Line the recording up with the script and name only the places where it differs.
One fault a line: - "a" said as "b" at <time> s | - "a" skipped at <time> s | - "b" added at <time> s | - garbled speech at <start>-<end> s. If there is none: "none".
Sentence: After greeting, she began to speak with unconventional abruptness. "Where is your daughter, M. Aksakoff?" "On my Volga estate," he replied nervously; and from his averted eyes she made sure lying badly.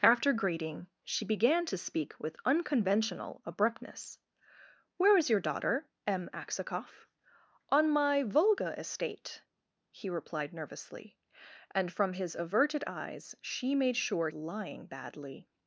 none